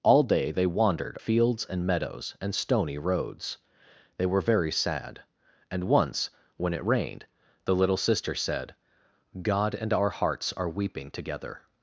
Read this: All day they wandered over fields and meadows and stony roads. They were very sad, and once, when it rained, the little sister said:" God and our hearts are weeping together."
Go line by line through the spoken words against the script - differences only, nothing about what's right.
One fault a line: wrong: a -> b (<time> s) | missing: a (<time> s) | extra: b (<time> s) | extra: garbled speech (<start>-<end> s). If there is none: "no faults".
missing: over (1.2 s)